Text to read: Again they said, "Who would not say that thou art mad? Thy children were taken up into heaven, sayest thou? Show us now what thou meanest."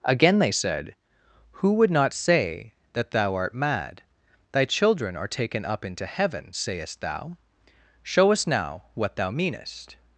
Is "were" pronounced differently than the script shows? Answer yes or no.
yes